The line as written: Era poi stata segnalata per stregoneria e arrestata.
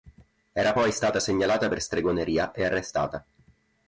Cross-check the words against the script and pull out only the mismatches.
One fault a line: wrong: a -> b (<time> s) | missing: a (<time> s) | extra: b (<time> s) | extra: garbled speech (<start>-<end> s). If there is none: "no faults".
no faults